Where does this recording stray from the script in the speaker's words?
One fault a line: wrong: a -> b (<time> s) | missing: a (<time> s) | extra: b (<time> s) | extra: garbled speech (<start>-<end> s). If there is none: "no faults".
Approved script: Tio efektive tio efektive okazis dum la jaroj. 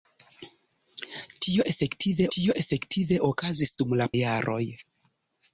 no faults